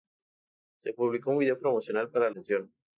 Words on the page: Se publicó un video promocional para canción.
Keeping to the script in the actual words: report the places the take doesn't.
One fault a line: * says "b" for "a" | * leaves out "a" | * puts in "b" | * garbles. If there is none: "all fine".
all fine